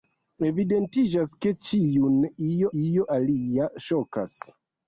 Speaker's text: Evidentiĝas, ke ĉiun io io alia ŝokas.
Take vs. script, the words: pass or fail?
pass